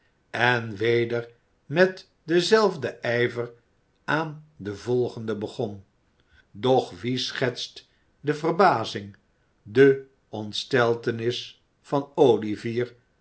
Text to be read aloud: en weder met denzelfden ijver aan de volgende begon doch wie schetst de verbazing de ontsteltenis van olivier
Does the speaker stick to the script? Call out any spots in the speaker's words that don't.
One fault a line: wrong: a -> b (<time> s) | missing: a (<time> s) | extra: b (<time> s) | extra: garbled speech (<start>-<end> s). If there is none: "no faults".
no faults